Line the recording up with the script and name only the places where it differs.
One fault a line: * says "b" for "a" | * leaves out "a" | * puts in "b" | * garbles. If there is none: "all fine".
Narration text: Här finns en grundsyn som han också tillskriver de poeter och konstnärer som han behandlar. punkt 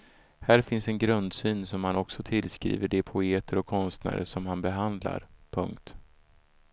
all fine